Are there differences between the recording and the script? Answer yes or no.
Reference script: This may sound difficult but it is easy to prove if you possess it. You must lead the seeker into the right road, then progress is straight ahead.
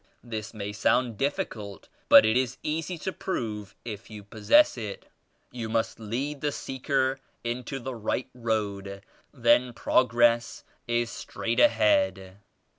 no